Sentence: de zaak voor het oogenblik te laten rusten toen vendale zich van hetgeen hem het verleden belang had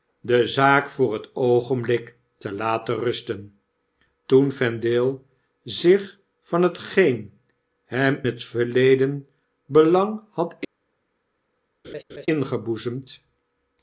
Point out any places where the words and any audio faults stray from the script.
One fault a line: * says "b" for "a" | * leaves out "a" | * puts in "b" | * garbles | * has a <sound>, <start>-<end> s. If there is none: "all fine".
* has a laugh, 11.8-12.3 s